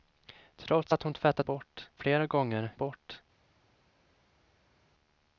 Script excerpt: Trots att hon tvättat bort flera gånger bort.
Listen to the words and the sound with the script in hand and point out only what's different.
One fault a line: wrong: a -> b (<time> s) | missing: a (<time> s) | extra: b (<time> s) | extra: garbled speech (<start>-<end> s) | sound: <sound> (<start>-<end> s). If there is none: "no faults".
no faults